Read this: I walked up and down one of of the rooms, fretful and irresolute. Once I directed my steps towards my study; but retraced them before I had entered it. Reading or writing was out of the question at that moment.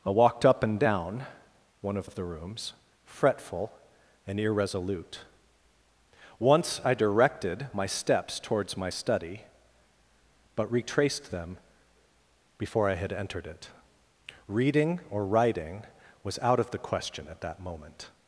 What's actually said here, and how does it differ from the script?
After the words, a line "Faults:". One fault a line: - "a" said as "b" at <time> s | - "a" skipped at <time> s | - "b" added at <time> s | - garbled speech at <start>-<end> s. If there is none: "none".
I walked up and down one of of the rooms, fretful and irresolute. Once I directed my steps towards my study; but retraced them before I had entered it. Reading or writing was out of the question at that moment.
Faults:
none